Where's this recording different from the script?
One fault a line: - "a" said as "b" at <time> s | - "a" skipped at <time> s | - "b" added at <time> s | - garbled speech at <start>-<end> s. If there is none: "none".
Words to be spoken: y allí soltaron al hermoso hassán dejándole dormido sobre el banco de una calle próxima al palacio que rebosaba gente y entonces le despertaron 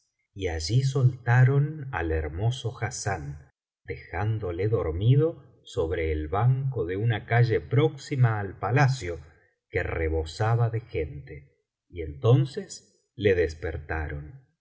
- "de" added at 10.7 s